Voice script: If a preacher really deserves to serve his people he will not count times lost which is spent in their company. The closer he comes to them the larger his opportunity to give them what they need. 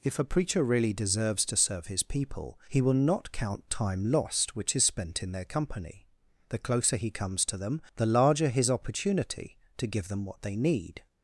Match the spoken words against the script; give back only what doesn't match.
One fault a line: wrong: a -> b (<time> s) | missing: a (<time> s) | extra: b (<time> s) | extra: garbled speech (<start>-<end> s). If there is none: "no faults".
wrong: times -> time (3.7 s)